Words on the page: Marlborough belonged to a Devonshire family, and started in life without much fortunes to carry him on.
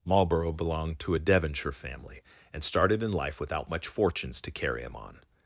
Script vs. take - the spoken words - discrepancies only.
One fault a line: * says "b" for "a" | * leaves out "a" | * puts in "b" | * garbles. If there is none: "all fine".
all fine